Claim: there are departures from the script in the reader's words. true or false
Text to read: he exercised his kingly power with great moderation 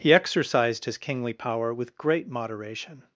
false